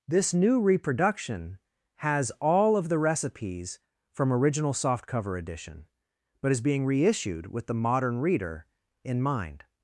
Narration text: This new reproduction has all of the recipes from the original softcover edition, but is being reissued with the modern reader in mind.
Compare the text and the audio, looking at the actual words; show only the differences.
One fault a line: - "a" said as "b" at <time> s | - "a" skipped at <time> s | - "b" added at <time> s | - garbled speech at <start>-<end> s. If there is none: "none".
- "the" skipped at 4.3 s